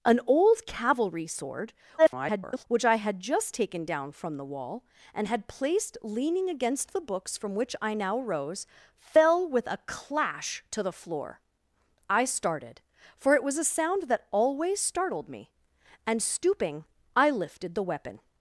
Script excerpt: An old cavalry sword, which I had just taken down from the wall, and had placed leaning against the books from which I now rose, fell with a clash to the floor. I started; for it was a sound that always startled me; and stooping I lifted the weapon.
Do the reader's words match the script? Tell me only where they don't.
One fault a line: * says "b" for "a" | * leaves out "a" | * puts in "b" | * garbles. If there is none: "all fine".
* garbles